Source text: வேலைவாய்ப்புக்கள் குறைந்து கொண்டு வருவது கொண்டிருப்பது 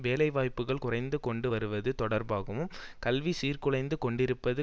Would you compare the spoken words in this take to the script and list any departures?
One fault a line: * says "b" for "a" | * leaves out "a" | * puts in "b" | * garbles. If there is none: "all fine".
* puts in "தொடர்பாகவும் கல்வி சீர்குலைந்து"